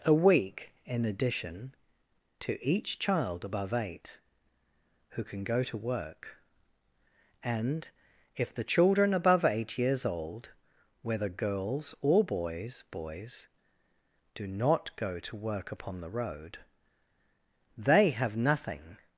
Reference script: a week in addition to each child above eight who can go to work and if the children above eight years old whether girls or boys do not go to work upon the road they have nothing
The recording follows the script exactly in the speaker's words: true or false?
false